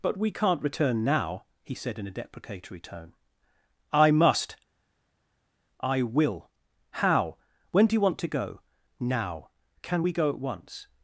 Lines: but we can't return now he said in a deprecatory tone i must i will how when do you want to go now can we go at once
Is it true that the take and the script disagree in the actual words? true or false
false